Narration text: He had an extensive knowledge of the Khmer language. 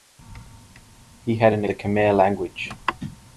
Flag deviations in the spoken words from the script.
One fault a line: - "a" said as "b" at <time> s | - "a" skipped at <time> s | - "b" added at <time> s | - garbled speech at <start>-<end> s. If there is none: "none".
- "extensive knowledge of" skipped at 1.6 s